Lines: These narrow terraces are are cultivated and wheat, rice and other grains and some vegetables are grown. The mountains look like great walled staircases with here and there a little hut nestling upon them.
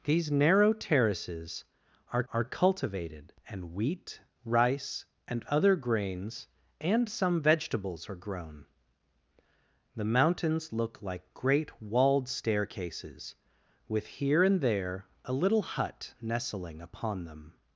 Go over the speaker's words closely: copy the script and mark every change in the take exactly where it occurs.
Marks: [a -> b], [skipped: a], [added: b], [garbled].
These narrow terraces are are cultivated and wheat, rice and other grains and some vegetables are grown. The mountains look like great walled staircases with here and there a little hut nestling upon them.